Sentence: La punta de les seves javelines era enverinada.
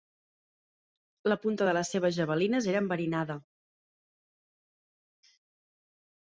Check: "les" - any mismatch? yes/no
no